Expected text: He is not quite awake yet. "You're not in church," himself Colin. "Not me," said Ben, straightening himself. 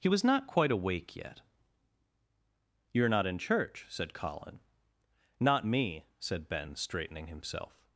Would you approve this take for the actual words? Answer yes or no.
no